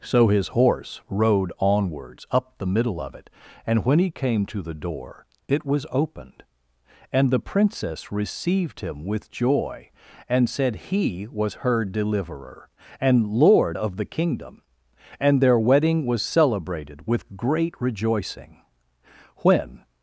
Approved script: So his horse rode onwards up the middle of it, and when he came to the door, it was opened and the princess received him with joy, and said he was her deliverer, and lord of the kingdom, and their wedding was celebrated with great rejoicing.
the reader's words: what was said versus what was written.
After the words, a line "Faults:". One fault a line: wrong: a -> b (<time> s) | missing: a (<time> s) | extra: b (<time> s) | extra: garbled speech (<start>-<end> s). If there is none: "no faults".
So his horse rode onwards up the middle of it, and when he came to the door, it was opened and the princess received him with joy, and said he was her deliverer, and lord of the kingdom, and their wedding was celebrated with great rejoicing. When
Faults:
extra: When (19.4 s)